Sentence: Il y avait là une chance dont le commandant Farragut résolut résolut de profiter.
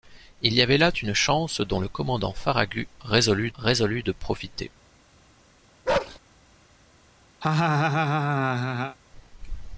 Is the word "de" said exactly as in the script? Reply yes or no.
yes